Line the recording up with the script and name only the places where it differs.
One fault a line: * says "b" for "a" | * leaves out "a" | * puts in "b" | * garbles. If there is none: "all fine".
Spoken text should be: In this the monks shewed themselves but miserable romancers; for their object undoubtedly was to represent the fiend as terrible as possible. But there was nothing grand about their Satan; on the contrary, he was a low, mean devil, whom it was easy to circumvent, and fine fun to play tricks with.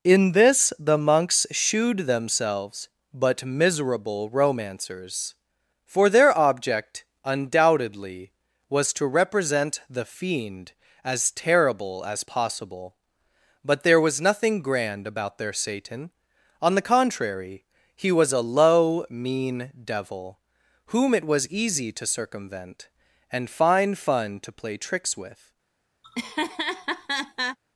all fine